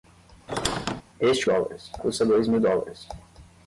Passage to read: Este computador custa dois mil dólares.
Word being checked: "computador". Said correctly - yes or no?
no